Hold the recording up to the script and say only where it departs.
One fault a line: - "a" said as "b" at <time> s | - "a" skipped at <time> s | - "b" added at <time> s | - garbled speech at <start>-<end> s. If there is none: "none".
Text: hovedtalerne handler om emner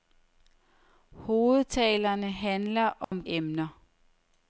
none